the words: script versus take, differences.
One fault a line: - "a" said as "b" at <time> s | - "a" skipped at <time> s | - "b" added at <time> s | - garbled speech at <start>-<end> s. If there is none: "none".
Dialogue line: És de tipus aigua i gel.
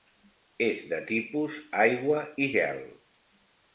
none